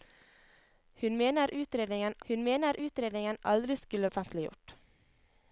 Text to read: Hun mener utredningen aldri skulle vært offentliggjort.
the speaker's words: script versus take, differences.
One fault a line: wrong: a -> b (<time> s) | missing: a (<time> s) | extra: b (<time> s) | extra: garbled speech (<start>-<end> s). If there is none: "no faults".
extra: hun mener utredningen (2.3 s)
missing: vært (4.1 s)